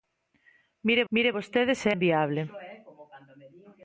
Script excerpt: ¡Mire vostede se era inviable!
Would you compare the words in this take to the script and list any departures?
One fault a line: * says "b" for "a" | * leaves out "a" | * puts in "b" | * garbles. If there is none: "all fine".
* puts in "mire"
* leaves out "era"